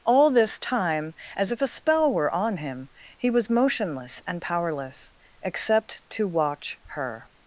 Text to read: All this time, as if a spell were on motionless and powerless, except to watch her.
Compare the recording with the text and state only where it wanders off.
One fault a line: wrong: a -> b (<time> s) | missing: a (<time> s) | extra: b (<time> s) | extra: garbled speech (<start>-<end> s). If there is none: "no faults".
extra: him he was (2.6 s)